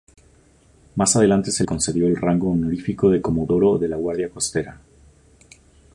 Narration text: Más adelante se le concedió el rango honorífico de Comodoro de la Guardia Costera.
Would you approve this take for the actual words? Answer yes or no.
no